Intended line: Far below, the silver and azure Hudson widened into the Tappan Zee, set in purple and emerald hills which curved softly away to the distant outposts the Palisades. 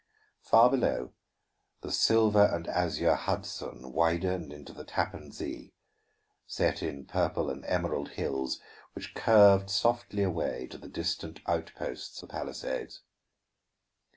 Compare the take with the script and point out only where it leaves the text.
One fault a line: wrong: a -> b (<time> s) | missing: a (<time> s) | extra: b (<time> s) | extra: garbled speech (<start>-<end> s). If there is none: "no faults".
no faults